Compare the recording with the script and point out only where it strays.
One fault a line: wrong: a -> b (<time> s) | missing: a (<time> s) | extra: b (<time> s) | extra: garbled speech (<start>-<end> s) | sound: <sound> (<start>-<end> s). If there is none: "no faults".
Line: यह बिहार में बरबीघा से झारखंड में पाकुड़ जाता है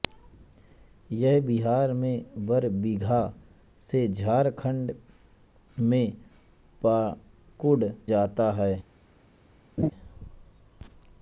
sound: laugh (9.8-9.9 s)